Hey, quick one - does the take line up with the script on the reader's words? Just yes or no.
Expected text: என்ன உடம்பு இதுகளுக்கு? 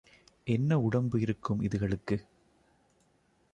no